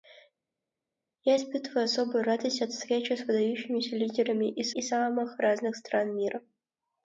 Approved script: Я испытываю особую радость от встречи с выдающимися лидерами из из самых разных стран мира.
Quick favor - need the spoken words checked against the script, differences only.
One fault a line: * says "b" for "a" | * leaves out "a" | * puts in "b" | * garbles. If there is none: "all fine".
all fine